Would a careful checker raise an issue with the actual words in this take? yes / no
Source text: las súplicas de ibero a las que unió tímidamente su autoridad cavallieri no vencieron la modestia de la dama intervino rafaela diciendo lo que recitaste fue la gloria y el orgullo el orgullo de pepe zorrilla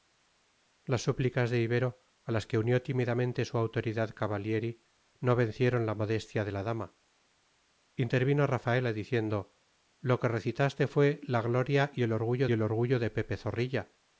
no